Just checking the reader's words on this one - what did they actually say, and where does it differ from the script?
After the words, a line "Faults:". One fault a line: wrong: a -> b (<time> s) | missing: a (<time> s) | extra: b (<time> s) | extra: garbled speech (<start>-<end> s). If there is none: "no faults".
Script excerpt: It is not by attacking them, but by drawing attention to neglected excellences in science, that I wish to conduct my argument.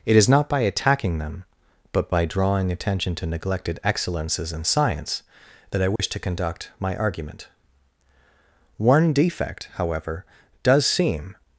It is not by attacking them, but by drawing attention to neglected excellences in science, that I wish to conduct my argument. One defect, however, does seem
Faults:
extra: One defect however does seem (8.8 s)